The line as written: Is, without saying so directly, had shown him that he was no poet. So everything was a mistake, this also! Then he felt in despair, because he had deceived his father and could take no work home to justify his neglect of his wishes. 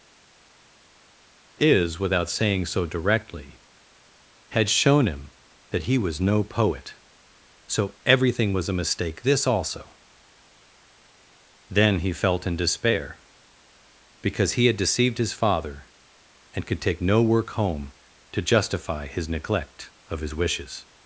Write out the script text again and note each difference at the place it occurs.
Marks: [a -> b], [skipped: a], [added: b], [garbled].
Is, without saying so directly, had shown him that he was no poet. So everything was a mistake, this also! Then he felt in despair, because he had deceived his father and could take no work home to justify his neglect of his wishes.